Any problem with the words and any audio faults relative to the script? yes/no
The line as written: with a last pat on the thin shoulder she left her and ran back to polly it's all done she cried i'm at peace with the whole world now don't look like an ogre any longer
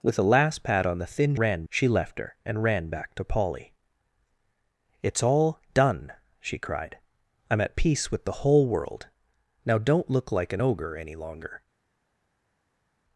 yes